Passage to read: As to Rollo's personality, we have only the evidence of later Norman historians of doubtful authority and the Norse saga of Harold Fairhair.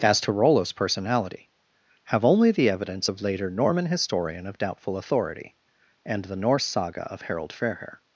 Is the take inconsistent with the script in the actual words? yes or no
yes